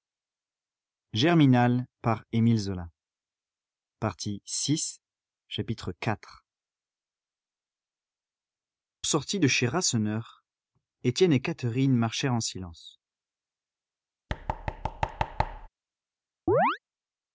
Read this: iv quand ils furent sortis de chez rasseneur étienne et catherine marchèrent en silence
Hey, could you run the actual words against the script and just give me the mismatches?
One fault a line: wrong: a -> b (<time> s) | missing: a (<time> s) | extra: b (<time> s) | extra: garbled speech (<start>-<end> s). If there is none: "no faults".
missing: quand ils furent (1.4 s)